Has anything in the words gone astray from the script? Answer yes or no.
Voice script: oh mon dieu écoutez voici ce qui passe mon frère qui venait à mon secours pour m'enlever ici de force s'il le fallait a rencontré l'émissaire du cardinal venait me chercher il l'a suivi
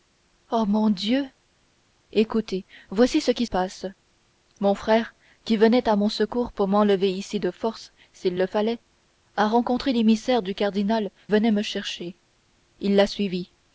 no